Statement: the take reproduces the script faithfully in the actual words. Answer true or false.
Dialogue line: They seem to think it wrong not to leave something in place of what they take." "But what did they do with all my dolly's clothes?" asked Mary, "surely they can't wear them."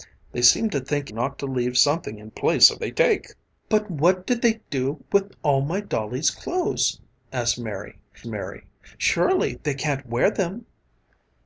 false